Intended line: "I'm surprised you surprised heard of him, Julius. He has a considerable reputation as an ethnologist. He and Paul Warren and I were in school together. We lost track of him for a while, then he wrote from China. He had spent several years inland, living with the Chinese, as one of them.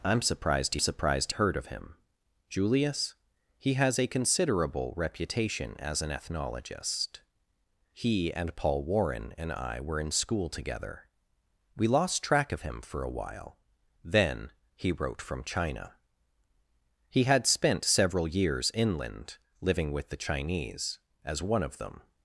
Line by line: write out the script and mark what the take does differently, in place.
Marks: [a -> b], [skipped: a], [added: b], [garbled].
"I'm surprised you surprised heard of him, Julius. He has a considerable reputation as an ethnologist. He and Paul Warren and I were in school together. We lost track of him for a while, then he wrote from China. He had spent several years inland, living with the Chinese, as one of them.